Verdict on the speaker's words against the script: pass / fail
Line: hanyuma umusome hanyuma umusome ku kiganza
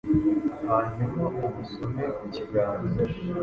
fail